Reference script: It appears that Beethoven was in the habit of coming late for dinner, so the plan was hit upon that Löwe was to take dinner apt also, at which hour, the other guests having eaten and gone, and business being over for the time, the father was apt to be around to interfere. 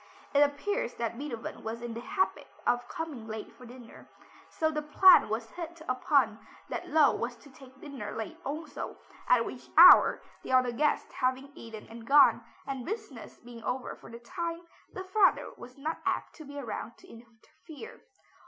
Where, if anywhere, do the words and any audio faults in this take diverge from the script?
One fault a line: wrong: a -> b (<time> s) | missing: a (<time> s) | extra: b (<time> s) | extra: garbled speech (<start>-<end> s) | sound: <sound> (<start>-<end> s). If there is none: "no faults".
wrong: apt -> late (8.1 s)
extra: not (15.8 s)